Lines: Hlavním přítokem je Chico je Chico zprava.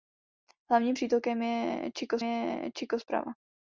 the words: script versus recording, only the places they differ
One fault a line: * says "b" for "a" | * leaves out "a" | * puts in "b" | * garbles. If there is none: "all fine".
all fine